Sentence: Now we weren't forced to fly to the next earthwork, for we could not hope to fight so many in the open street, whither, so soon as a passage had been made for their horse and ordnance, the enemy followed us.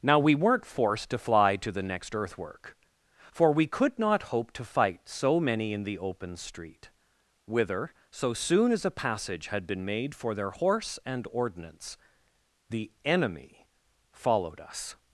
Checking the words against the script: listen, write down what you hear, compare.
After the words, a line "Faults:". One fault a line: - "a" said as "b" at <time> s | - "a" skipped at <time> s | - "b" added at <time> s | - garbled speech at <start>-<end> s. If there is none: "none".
Now we weren't forced to fly to the next earthwork, for we could not hope to fight so many in the open street, whither, so soon as a passage had been made for their horse and ordnance, the enemy followed us.
Faults:
none